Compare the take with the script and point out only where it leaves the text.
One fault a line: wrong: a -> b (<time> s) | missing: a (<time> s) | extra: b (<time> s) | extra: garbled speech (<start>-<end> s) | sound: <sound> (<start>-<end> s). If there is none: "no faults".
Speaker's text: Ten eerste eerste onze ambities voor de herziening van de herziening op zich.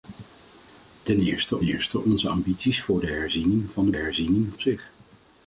no faults